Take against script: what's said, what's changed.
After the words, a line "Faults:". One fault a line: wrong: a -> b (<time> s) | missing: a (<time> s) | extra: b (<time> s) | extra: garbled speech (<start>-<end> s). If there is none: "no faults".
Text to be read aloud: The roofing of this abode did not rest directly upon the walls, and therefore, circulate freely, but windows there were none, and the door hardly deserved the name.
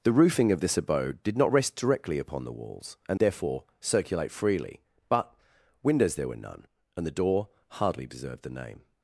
The roofing of this abode did not rest directly upon the walls, and therefore, circulate freely, but windows there were none, and the door hardly deserved the name.
Faults:
no faults